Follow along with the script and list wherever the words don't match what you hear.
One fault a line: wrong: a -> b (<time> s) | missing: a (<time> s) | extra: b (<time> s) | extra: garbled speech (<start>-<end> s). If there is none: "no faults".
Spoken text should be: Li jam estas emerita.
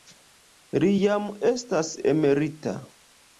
no faults